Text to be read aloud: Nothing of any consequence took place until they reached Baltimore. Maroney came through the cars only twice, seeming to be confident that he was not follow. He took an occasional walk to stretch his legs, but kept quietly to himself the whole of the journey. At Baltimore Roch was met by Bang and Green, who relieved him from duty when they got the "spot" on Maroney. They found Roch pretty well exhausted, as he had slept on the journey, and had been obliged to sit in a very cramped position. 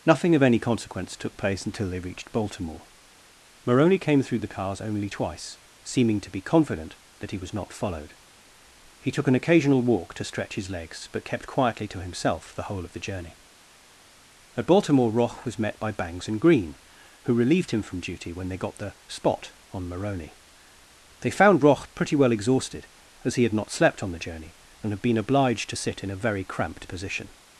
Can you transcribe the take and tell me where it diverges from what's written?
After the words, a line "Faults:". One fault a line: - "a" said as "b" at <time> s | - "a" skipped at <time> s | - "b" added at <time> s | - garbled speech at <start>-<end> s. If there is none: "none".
Nothing of any consequence took place until they reached Baltimore. Maroney came through the cars only twice, seeming to be confident that he was not followed. He took an occasional walk to stretch his legs, but kept quietly to himself the whole of the journey. At Baltimore Roch was met by Bangs and Green, who relieved him from duty when they got the "spot" on Maroney. They found Roch pretty well exhausted, as he had not slept on the journey, and had been obliged to sit in a very cramped position.
Faults:
- "follow" said as "followed" at 7.7 s
- "Bang" said as "Bangs" at 15.9 s
- "not" added at 23.5 s